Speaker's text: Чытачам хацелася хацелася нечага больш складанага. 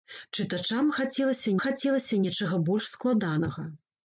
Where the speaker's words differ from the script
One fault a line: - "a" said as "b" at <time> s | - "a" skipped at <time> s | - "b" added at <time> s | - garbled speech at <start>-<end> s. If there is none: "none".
none